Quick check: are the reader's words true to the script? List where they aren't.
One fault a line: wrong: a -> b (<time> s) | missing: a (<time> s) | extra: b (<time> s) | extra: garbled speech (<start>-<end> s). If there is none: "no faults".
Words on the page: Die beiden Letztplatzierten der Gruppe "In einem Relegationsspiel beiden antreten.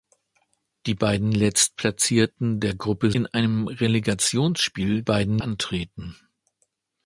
no faults